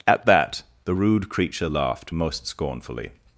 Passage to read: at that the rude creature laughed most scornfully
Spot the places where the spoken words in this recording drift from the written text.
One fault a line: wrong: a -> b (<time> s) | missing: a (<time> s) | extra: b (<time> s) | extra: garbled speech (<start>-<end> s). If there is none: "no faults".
no faults